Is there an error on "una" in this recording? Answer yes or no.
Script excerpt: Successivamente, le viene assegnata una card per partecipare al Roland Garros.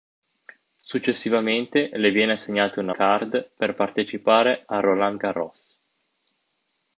no